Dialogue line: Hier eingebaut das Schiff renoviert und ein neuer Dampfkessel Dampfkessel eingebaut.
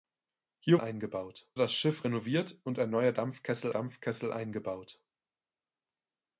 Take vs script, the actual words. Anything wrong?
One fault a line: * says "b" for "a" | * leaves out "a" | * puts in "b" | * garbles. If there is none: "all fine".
all fine